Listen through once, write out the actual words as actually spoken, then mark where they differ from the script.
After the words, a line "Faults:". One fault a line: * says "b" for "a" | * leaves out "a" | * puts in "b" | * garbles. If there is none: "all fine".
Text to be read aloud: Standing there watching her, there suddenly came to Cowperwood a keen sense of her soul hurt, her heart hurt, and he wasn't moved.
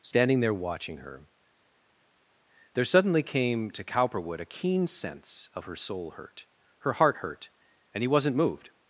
Standing there watching her, there suddenly came to Cowperwood a keen sense of her soul hurt, her heart hurt, and he wasn't moved.
Faults:
all fine